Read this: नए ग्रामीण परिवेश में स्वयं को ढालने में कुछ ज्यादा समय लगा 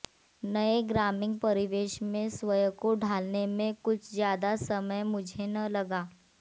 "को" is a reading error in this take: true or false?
false